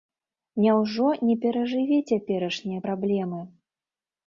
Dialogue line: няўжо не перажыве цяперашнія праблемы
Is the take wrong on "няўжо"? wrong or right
right